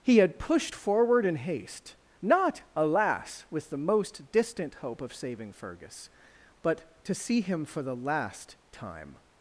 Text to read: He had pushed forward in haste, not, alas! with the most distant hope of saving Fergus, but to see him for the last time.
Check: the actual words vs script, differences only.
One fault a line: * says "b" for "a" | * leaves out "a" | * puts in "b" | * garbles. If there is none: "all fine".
all fine